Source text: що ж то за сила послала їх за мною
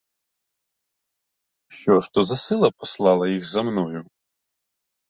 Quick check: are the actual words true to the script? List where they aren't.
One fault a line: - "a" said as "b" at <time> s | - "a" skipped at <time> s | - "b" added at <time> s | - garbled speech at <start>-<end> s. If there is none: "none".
none